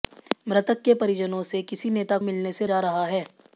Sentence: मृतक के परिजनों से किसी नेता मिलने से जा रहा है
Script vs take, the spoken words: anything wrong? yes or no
no